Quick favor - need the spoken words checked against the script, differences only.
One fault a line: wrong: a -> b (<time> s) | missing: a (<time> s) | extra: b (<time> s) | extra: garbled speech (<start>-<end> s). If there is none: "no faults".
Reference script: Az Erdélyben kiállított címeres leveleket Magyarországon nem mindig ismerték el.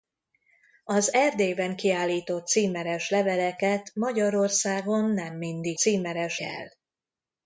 wrong: ismerték -> címeres (5.8 s)